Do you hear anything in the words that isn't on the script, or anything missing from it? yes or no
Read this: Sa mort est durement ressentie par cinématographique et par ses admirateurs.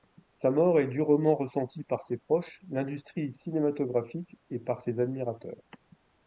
yes